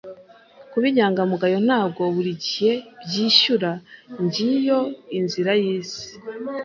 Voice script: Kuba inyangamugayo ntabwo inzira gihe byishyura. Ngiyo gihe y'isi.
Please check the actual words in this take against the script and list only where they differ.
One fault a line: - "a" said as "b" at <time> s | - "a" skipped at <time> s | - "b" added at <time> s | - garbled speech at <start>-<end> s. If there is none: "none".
- "inzira" said as "buri" at 2.1 s
- "gihe" said as "inzira" at 5.2 s